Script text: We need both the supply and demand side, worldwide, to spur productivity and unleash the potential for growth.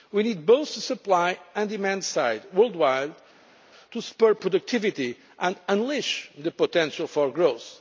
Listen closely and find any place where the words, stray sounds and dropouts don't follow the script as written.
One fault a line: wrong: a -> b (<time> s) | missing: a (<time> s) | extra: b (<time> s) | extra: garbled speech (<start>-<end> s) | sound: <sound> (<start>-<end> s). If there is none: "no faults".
no faults